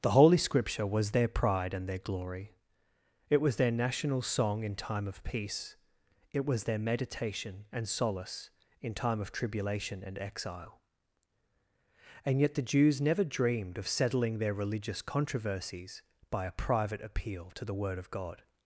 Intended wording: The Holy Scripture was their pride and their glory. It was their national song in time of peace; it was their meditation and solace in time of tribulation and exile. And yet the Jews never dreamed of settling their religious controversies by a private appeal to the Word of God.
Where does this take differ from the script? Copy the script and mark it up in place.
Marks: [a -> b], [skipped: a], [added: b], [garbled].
The Holy Scripture was their pride and their glory. It was their national song in time of peace; it was their meditation and solace in time of tribulation and exile. And yet the Jews never dreamed of settling their religious controversies by a private appeal to the Word of God.